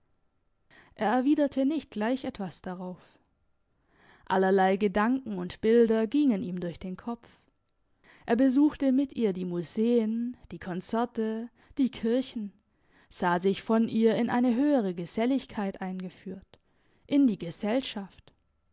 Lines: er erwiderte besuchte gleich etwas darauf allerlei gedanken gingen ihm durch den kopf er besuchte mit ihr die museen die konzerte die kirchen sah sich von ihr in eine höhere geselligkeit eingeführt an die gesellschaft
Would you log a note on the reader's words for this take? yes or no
yes